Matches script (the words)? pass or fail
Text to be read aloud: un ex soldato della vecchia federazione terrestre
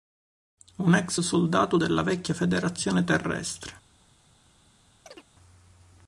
pass